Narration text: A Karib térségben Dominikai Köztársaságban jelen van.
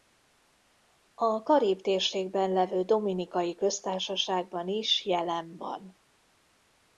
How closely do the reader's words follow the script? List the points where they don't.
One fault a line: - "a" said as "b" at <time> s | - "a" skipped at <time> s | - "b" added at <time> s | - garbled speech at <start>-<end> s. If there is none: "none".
- "levő" added at 2.5 s
- "is" added at 4.7 s